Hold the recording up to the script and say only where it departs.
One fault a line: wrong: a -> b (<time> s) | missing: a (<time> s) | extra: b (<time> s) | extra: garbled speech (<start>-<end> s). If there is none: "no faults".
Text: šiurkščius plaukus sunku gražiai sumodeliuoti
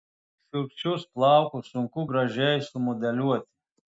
no faults